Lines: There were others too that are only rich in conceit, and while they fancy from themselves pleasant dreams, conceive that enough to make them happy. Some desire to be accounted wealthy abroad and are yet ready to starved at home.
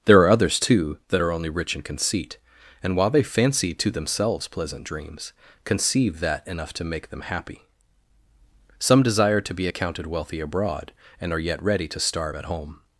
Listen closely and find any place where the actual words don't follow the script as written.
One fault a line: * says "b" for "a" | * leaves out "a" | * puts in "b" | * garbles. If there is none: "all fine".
* says "are" for "were"
* says "to" for "from"
* says "starve" for "starved"